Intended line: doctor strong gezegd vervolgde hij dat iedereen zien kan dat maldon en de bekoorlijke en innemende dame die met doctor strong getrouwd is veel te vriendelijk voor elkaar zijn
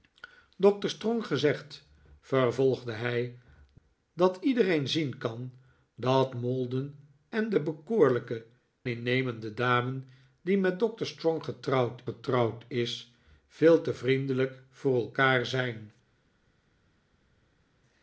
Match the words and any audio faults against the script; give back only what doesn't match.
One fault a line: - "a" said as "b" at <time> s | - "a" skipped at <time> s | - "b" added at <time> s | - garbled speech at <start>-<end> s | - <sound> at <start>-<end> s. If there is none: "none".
- "en" skipped at 8.5 s
- "getrouwd" added at 12.0 s